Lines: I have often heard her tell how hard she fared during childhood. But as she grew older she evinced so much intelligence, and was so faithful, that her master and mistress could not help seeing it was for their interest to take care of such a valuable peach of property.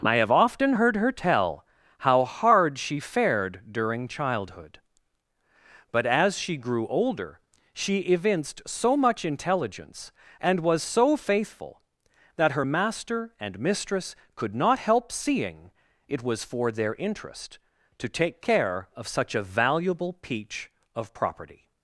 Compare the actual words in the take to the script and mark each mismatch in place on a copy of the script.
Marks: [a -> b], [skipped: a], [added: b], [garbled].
I have often heard her tell how hard she fared during childhood. But as she grew older she evinced so much intelligence, and was so faithful, that her master and mistress could not help seeing it was for their interest to take care of such a valuable peach of property.